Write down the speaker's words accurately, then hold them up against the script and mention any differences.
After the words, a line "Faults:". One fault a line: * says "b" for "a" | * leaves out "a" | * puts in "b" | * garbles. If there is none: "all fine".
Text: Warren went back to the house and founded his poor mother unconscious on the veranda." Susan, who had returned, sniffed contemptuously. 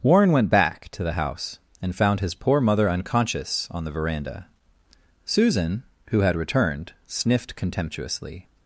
Warren went back to the house and found his poor mother unconscious on the veranda." Susan, who had returned, sniffed contemptuously.
Faults:
* says "found" for "founded"